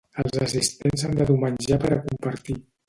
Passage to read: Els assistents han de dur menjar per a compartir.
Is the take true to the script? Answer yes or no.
yes